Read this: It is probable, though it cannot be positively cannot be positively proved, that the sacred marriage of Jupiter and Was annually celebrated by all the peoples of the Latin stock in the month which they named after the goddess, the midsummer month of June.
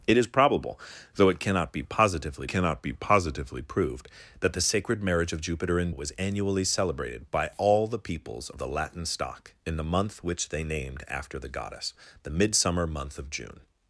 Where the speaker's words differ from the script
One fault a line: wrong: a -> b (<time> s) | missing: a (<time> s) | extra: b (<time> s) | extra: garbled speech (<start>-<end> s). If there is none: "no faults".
no faults